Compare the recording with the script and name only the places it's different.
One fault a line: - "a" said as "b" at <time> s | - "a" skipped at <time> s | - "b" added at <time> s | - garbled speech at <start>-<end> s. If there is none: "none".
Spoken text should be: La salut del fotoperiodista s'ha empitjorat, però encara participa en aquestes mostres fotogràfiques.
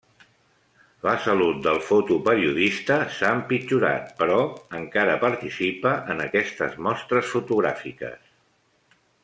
none